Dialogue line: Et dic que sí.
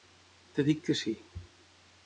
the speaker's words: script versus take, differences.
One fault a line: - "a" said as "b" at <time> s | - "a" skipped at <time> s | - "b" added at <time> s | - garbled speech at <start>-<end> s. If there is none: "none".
none